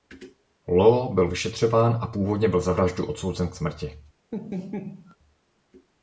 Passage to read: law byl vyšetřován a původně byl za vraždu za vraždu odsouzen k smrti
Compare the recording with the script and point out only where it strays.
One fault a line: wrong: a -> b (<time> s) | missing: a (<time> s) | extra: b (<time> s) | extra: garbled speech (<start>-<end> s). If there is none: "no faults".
missing: za vraždu (3.1 s)